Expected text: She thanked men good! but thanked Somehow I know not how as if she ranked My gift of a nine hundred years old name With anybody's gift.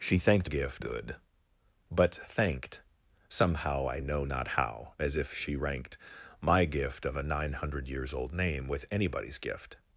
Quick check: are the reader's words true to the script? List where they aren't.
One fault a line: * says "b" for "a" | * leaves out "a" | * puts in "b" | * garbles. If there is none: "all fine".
* says "gift" for "men"